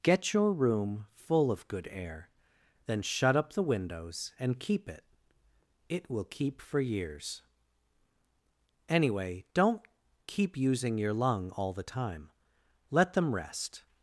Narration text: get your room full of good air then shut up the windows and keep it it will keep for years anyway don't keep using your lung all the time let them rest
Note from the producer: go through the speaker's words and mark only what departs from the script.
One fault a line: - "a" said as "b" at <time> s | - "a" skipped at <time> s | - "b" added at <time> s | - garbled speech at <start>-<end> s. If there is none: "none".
none